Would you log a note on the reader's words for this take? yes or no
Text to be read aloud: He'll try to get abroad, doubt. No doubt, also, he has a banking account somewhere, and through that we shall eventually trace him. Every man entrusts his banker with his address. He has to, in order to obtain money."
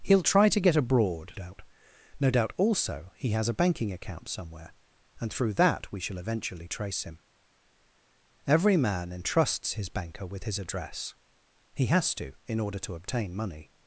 no